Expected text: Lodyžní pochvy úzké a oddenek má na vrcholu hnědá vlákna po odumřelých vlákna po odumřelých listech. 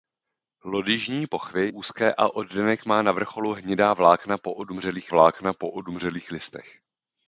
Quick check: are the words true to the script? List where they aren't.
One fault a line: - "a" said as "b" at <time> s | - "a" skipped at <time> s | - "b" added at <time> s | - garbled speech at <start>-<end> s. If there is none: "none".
none